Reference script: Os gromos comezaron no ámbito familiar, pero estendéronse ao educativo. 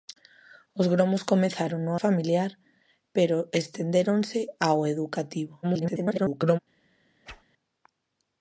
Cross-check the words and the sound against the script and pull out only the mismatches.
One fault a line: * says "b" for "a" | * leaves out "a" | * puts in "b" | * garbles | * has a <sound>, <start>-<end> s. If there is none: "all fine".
* leaves out "ámbito"
* garbles
* has a whoosh, 7.2-7.4 s